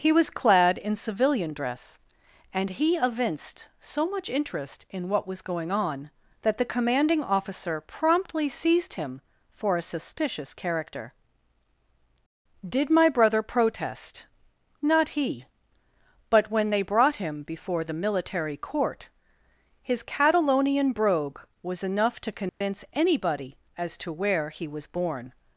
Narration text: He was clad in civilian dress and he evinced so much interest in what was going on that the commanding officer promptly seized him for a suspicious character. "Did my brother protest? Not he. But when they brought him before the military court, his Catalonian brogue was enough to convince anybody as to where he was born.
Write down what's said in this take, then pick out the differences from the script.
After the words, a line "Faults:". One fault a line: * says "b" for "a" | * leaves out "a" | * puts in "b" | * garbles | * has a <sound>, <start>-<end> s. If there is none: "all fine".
He was clad in civilian dress and he evinced so much interest in what was going on that the commanding officer promptly seized him for a suspicious character. "Did my brother protest? Not he. But when they brought him before the military court, his Catalonian brogue was enough to convince anybody as to where he was born.
Faults:
* has a dropout, 22.5-22.6 s